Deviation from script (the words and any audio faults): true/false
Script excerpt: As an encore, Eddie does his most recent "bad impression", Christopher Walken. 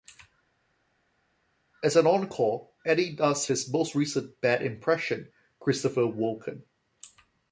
false